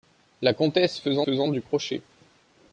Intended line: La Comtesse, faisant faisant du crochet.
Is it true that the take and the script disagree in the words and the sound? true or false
false